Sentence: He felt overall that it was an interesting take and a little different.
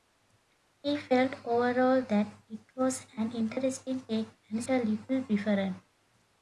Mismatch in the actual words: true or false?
false